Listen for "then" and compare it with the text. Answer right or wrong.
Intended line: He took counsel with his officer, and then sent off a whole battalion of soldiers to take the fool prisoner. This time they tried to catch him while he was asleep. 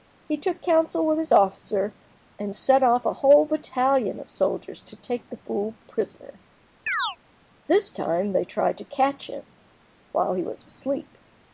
wrong